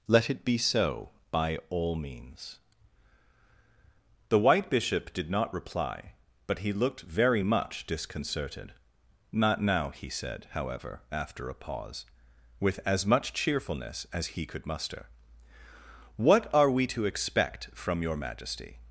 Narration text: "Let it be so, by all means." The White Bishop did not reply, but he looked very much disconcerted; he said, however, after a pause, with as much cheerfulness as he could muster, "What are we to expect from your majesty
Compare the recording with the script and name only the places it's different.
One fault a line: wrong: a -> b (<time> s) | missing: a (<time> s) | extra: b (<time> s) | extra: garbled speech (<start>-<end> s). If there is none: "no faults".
extra: not now (9.3 s)